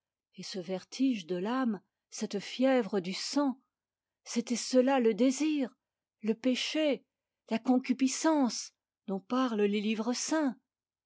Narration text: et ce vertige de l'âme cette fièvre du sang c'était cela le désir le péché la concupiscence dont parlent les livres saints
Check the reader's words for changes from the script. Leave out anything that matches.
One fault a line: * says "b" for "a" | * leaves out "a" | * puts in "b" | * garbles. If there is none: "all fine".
all fine